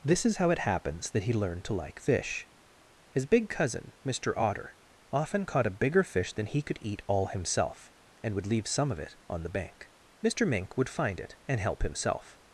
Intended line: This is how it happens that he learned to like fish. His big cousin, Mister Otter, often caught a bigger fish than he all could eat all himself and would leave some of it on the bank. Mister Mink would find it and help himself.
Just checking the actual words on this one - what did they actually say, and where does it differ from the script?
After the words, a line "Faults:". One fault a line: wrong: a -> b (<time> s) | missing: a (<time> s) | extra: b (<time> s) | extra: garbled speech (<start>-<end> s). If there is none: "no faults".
This is how it happens that he learned to like fish. His big cousin, Mister Otter, often caught a bigger fish than he could eat all himself and would leave some of it on the bank. Mister Mink would find it and help himself.
Faults:
missing: all (6.6 s)